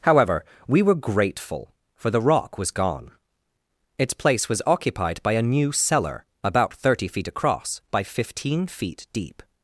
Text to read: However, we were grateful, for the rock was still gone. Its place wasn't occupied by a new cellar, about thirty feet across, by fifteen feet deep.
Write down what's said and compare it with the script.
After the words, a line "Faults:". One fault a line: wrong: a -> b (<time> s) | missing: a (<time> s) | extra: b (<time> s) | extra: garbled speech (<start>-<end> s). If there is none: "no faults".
However, we were grateful, for the rock was gone. Its place was occupied by a new cellar, about thirty feet across, by fifteen feet deep.
Faults:
missing: still (2.7 s)
wrong: wasn't -> was (4.5 s)